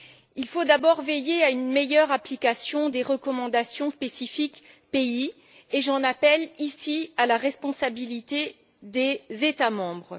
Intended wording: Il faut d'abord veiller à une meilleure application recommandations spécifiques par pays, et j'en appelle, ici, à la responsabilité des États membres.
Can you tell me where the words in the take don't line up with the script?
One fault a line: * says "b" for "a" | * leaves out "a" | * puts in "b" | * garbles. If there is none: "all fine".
* puts in "des"